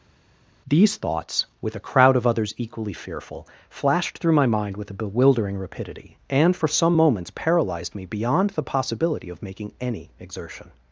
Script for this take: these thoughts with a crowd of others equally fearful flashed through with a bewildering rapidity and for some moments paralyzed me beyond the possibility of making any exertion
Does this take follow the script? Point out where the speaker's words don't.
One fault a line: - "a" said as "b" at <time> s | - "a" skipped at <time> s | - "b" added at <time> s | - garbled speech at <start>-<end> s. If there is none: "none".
- "my mind" added at 4.3 s